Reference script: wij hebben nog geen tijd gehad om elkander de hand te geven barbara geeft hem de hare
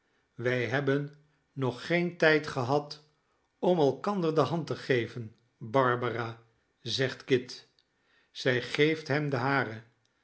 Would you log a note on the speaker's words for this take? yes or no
yes